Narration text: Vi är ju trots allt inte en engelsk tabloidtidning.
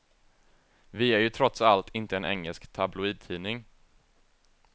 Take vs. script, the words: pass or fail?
pass